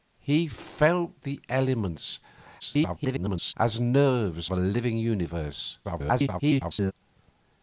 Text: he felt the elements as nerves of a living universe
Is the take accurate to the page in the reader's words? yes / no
no